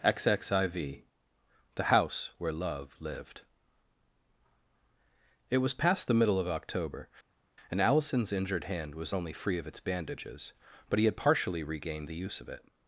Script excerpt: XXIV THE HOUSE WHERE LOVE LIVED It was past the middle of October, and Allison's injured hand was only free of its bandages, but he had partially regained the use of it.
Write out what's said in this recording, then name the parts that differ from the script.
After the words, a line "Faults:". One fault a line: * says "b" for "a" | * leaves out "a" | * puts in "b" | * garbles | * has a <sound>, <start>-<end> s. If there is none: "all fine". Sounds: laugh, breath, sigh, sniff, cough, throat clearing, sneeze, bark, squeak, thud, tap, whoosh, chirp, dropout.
XXIV THE HOUSE WHERE LOVE LIVED It was past the middle of October, and Allison's injured hand was only free of its bandages, but he had partially regained the use of it.
Faults:
all fine